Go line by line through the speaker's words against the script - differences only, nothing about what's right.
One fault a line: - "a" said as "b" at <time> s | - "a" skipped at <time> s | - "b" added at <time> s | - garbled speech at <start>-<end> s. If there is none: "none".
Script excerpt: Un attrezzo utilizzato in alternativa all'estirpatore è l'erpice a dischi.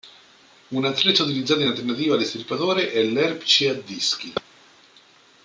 none